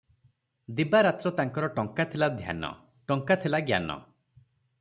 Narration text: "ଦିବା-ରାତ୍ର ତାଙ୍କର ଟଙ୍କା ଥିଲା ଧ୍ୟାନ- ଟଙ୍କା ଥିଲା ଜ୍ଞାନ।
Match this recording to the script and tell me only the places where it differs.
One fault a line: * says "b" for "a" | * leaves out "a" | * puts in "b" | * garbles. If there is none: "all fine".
all fine